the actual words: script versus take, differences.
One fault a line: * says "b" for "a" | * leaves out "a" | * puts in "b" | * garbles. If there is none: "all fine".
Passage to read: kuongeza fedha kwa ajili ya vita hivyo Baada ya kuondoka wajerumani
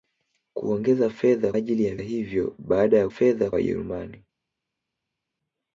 * leaves out "kwa"
* leaves out "vita"
* says "fedha" for "kuondoka"